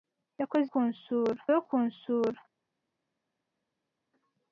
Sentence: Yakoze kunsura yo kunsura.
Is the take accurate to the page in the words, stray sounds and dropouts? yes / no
yes